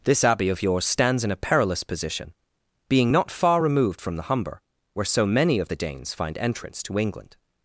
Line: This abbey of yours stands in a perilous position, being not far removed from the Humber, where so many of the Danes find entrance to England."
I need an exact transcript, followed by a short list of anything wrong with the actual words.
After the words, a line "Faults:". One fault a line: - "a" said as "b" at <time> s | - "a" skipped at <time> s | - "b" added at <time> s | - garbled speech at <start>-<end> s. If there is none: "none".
This abbey of yours stands in a perilous position, being not far removed from the Humber, where so many of the Danes find entrance to England."
Faults:
none